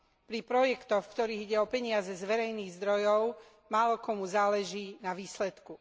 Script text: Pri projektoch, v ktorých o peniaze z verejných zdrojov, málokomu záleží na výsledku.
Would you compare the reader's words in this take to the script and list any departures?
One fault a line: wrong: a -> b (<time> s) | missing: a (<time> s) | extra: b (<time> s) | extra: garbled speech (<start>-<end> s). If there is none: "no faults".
extra: ide (1.4 s)